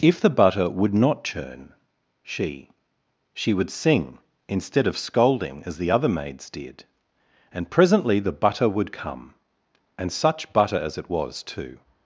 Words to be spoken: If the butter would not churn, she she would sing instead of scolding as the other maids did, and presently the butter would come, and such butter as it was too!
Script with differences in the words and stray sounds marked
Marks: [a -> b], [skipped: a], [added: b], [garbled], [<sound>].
If the butter would not churn, she she would sing instead of scolding as the other maids did, and presently the butter would come, and such butter as it was too!